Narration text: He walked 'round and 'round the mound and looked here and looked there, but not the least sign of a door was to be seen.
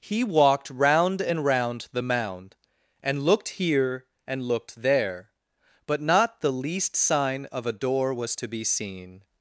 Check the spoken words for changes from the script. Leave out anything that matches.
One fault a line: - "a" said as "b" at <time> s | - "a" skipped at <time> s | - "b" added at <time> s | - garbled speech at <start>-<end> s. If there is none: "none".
none